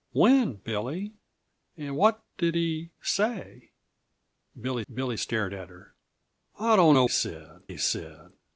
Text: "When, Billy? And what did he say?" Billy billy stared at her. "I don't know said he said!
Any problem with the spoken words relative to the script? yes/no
no